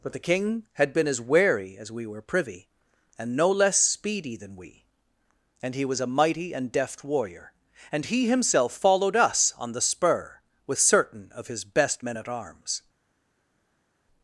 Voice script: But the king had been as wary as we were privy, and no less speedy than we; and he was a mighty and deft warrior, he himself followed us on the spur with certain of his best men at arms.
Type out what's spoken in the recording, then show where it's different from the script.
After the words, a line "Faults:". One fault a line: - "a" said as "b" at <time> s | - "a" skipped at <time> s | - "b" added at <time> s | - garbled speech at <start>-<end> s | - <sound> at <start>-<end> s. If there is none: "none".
But the king had been as wary as we were privy, and no less speedy than we; and he was a mighty and deft warrior, and he himself followed us on the spur with certain of his best men at arms.
Faults:
- "and" added at 7.9 s